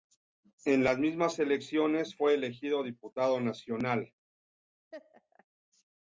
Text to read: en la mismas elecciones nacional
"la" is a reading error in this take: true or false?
true